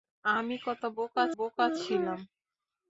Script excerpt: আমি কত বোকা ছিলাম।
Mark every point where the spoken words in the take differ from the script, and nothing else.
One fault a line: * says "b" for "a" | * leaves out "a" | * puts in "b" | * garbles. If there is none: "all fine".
* puts in "বোকা"